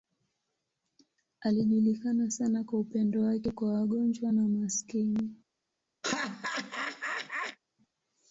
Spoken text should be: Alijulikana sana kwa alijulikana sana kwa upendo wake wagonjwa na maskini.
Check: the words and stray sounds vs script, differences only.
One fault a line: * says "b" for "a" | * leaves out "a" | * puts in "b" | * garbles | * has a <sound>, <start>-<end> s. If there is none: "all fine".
* says "upendo wake" for "alijulikana sana"
* leaves out "upendo wake"
* has a laugh, 6.0-7.6 s